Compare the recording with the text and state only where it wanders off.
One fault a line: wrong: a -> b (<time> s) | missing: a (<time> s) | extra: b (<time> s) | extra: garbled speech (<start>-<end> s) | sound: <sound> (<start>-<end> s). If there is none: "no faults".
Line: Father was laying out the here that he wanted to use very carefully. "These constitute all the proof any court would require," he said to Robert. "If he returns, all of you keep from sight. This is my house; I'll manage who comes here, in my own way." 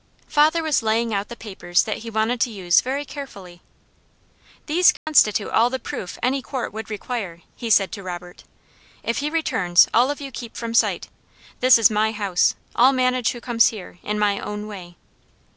wrong: here -> papers (1.4 s)
sound: dropout (5.0-5.1 s)